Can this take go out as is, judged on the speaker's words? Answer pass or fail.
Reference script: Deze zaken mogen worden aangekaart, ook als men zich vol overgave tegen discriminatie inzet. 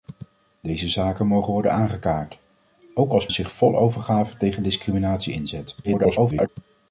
fail